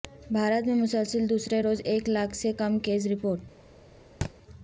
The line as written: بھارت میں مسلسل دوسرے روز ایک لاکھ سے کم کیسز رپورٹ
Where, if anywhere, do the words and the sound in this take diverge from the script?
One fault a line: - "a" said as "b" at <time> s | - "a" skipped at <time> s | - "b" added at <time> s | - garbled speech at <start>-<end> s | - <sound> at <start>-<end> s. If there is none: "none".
- thud at 4.2-4.3 s